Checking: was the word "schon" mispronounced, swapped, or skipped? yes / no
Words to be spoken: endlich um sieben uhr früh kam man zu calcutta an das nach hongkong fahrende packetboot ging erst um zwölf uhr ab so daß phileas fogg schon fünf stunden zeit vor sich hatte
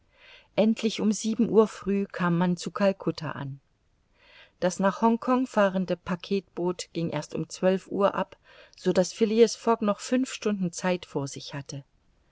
yes